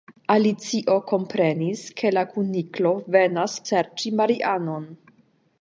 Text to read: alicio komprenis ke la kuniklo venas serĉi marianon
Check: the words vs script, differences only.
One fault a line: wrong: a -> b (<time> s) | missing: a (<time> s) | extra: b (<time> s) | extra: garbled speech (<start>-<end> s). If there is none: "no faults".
no faults